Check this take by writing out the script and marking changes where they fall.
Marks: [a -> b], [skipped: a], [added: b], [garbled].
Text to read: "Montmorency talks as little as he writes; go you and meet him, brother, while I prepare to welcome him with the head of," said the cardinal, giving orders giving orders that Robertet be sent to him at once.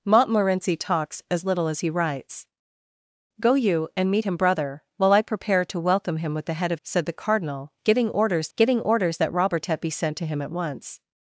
"Montmorency talks as little as he writes; go you and meet him, brother, while I prepare to welcome him with the head of," said the cardinal, giving orders giving orders that Robertet be sent to him at once.